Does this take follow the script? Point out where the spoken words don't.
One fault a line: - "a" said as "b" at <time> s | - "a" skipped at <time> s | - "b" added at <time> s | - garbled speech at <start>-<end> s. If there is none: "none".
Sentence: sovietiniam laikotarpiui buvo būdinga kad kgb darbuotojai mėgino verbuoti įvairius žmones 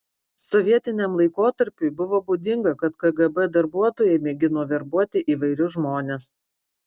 none